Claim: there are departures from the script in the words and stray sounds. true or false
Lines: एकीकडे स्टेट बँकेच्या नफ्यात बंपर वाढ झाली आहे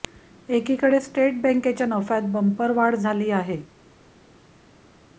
false